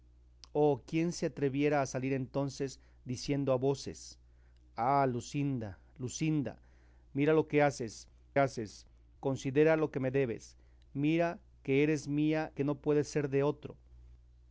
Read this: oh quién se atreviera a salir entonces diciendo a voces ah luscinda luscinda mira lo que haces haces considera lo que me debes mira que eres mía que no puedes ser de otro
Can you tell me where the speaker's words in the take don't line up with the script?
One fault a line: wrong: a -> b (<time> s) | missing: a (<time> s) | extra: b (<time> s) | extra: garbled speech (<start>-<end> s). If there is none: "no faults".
no faults